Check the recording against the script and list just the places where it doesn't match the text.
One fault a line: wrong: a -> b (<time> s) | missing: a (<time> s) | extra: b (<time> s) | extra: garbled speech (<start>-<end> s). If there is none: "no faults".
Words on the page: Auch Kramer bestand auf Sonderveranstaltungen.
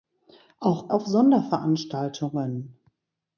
missing: Kramer bestand (0.9 s)